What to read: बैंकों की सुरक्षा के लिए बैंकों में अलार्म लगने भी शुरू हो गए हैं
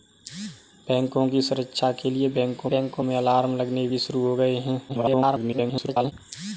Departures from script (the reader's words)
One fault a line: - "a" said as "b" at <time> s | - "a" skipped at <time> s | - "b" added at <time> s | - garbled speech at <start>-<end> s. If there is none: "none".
- "बैंकों" added at 2.7 s
- garbled speech at 4.9-6.1 s